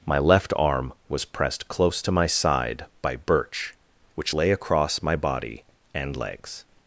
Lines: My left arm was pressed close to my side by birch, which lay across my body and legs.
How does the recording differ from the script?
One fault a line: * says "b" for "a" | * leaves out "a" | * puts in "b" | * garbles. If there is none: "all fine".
all fine